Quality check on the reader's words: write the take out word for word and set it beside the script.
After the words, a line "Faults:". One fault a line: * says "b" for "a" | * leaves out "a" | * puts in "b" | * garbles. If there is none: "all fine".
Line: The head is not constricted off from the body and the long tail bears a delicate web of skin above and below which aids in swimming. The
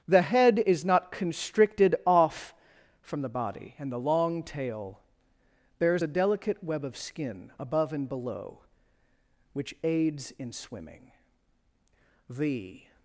The head is not constricted off from the body and the long tail bears a delicate web of skin above and below which aids in swimming. The
Faults:
all fine